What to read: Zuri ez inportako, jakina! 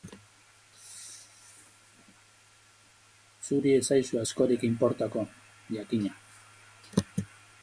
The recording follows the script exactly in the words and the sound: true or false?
false